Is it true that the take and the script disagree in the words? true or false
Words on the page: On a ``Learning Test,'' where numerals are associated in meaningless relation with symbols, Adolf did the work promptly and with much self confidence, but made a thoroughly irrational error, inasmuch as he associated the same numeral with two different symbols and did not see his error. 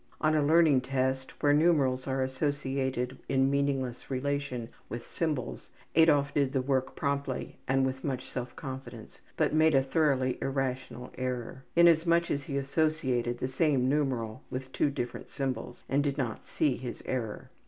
false